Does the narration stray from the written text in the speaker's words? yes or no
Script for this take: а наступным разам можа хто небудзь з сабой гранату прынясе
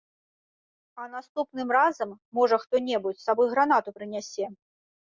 no